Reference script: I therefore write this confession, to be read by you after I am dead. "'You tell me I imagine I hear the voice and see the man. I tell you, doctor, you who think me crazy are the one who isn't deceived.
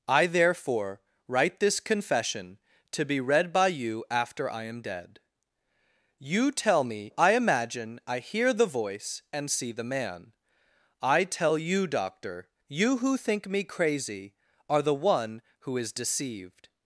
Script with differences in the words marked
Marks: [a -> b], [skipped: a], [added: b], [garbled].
I therefore write this confession, to be read by you after I am dead. "'You tell me I imagine I hear the voice and see the man. I tell you, doctor, you who think me crazy are the one who [isn't -> is] deceived.